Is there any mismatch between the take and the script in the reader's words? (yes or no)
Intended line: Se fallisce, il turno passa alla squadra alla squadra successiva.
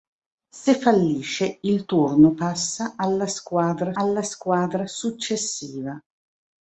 no